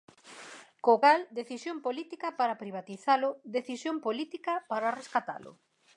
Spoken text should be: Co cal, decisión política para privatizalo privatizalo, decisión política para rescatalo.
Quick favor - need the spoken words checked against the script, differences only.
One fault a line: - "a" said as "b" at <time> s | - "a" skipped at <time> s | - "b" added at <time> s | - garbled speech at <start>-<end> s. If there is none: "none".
- "privatizalo" skipped at 3.3 s